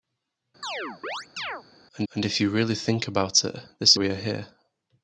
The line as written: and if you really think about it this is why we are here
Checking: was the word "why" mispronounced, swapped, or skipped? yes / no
yes